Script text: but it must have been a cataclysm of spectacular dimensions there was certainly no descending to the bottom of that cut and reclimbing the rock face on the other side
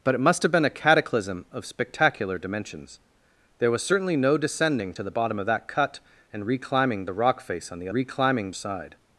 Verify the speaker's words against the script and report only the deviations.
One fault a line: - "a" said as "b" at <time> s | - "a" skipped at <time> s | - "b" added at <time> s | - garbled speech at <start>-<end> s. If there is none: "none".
- "other" said as "reclimbing" at 7.9 s